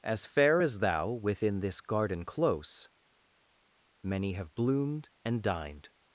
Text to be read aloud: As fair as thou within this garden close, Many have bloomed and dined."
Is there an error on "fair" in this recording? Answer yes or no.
no